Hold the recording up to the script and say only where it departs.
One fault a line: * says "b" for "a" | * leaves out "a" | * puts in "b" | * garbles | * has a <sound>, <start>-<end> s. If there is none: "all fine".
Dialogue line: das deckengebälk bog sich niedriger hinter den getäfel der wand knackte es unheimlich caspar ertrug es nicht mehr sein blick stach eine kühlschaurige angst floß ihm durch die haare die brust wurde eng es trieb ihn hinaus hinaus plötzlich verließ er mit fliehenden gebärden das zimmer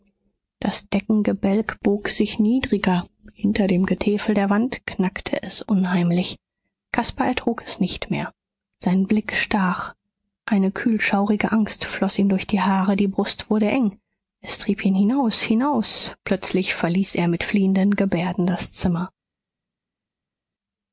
* says "dem" for "den"